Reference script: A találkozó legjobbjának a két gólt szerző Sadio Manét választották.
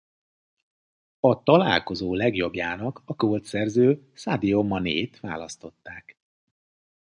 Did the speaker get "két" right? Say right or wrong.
wrong